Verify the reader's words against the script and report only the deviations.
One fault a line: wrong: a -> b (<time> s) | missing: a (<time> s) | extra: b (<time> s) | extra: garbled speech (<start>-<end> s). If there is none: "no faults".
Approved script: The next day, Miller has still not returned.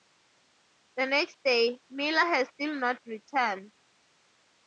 no faults